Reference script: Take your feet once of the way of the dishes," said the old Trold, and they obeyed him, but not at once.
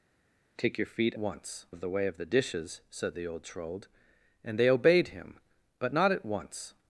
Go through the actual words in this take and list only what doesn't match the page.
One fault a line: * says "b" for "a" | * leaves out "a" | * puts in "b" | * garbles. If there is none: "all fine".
all fine